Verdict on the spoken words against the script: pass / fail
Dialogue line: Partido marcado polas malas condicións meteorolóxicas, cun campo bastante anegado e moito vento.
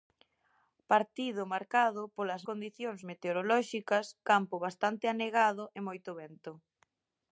fail